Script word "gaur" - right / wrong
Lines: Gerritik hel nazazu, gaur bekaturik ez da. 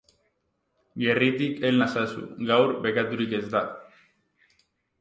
right